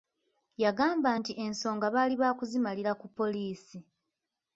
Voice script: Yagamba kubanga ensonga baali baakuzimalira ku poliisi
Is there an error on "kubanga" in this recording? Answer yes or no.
yes